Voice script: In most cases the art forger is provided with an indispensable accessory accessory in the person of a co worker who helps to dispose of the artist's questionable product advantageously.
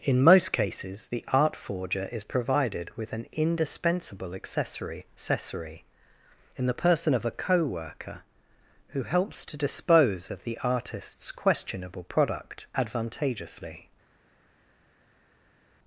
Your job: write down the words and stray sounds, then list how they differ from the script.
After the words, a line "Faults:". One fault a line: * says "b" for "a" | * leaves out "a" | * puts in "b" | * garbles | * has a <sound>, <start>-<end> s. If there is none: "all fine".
In most cases the art forger is provided with an indispensable accessory accessory in the person of a co worker who helps to dispose of the artist's questionable product advantageously.
Faults:
all fine